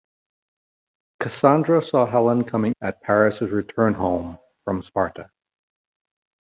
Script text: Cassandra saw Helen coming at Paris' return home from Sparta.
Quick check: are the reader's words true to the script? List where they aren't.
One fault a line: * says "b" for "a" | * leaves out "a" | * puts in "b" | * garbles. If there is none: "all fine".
all fine